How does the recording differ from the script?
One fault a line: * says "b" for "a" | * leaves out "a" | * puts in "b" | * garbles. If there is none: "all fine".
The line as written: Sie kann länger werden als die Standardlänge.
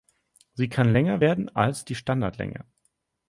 all fine